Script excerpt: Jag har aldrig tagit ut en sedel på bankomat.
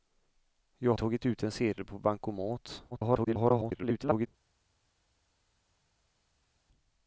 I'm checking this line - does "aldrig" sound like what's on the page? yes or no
no